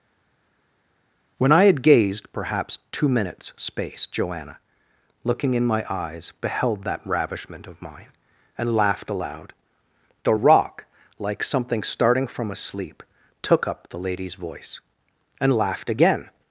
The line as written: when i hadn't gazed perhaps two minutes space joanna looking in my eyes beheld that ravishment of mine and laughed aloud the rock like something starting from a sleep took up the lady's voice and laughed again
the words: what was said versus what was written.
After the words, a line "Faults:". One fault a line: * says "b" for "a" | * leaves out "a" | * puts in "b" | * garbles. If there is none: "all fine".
when i had gazed perhaps two minutes space joanna looking in my eyes beheld that ravishment of mine and laughed aloud the rock like something starting from a sleep took up the lady's voice and laughed again
Faults:
* says "had" for "hadn't"